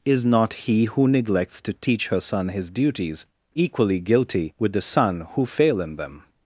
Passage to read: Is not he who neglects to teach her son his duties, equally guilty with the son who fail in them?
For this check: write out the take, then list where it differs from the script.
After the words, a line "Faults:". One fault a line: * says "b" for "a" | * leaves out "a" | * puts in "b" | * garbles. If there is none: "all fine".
Is not he who neglects to teach her son his duties, equally guilty with the son who fail in them?
Faults:
all fine